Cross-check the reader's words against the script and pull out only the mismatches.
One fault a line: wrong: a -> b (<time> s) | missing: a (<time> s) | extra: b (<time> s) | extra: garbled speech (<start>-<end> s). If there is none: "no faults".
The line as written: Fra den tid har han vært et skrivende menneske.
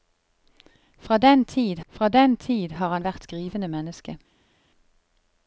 extra: fra den tid (1.9 s)
missing: et (3.3 s)